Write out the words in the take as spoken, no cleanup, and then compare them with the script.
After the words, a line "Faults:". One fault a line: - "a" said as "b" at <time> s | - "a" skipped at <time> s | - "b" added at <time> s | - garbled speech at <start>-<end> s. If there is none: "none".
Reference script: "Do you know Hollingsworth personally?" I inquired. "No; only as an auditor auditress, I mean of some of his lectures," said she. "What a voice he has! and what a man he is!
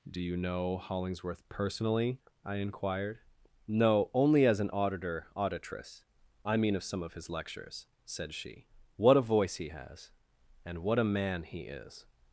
"Do you know Hollingsworth personally?" I inquired. "No; only as an auditor auditress, I mean of some of his lectures," said she. "What a voice he has! and what a man he is!
Faults:
none